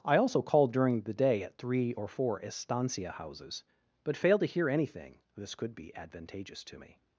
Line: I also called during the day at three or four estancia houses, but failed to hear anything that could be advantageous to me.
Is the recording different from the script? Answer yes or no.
yes